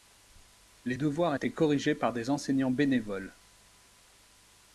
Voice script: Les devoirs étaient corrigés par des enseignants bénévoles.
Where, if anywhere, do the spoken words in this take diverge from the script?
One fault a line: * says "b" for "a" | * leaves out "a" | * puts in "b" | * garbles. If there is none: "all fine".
all fine